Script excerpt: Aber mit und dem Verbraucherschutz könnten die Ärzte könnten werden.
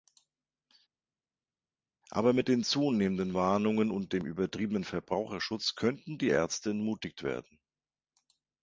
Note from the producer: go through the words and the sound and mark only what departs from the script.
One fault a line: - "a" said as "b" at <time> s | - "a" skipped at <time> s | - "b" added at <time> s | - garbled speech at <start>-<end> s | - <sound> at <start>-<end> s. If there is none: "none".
- "den zunehmenden Warnungen" added at 2.5 s
- "übertriebenen" added at 4.2 s
- "könnten" said as "entmutigt" at 6.7 s